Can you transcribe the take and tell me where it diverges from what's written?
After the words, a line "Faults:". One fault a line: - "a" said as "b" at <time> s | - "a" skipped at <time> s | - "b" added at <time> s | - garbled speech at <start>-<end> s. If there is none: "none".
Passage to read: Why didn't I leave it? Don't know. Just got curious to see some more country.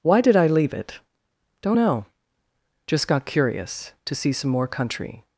Why did I leave it? Don't know. Just got curious to see some more country.
Faults:
- "didn't" said as "did" at 0.2 s